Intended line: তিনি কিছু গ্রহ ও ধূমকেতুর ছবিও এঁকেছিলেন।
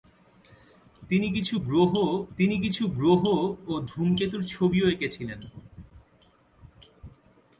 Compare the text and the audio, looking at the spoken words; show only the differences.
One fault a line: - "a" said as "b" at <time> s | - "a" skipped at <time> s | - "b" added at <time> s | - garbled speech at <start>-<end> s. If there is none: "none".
- "তিনি কিছু গ্রহ" added at 2.4 s